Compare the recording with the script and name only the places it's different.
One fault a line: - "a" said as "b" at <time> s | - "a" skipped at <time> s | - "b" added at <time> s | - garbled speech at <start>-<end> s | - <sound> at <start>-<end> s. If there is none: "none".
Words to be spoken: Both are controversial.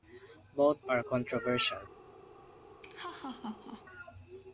- laugh at 2.8-3.8 s